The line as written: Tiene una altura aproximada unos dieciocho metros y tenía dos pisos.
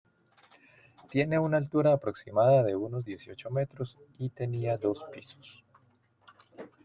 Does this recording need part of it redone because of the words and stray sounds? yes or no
yes